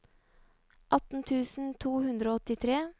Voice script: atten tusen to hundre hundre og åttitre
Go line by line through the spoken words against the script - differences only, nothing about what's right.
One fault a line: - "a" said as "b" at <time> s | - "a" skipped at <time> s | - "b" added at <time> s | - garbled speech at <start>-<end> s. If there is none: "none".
- "hundre" skipped at 2.3 s